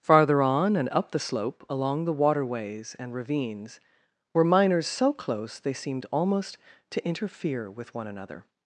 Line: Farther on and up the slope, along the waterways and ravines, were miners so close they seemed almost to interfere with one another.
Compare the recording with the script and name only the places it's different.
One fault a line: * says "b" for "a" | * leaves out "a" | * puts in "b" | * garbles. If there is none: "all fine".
all fine